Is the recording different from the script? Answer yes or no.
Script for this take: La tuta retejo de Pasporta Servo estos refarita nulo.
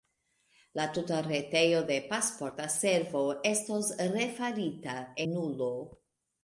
no